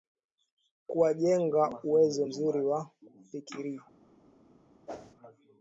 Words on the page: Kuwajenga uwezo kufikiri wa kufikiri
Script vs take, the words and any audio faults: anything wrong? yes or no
yes